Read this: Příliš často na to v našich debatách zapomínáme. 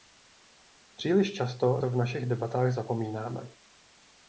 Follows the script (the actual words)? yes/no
no